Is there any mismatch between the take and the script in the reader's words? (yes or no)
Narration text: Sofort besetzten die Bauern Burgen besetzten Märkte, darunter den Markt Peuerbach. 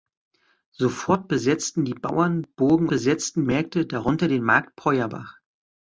no